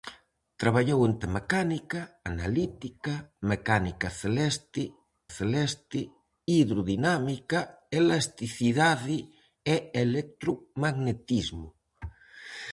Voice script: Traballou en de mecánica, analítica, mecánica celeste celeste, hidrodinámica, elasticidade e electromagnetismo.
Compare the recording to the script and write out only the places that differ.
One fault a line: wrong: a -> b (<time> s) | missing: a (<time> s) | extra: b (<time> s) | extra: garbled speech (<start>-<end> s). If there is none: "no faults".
no faults